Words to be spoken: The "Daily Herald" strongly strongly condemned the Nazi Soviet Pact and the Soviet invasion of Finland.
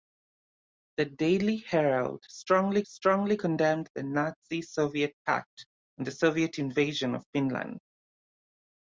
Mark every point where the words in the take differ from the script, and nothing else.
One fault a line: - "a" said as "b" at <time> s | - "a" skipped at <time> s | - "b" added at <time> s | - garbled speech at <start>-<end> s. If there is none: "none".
none